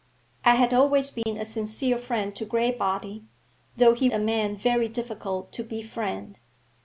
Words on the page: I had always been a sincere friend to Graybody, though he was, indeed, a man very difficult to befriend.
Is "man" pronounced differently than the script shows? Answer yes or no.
no